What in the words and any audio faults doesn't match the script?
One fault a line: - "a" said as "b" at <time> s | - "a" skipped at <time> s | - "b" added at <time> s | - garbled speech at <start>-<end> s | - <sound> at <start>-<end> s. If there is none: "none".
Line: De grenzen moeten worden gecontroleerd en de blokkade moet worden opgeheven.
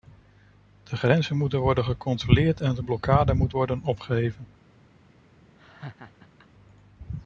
- laugh at 5.6-6.5 s